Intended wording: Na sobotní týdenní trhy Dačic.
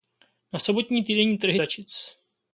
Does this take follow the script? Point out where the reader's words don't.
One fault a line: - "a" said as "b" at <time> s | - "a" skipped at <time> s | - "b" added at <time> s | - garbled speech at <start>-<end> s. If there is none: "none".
none